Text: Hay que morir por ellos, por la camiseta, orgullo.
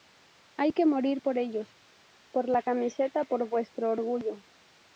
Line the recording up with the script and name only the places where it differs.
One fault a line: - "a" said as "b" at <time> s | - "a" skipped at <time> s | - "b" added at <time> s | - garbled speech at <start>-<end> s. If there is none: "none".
- "por vuestro" added at 3.2 s